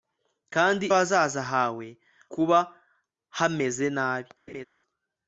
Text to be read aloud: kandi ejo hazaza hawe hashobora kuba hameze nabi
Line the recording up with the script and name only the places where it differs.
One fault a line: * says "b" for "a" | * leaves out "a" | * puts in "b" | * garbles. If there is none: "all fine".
* leaves out "ejo"
* leaves out "hashobora"